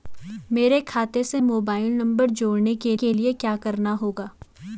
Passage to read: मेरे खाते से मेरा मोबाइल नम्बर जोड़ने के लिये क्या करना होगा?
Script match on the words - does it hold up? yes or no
no